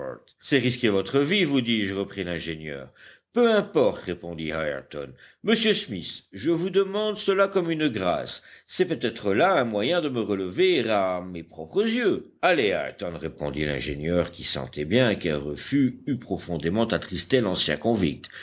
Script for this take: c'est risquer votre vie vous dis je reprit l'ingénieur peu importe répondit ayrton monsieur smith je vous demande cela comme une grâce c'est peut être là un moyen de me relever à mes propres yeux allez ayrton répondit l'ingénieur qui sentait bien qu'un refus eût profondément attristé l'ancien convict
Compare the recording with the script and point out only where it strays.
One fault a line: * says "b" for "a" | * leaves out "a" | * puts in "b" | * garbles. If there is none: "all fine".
all fine